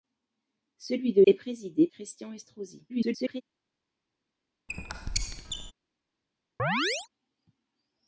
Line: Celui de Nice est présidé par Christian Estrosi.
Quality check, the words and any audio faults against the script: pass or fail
fail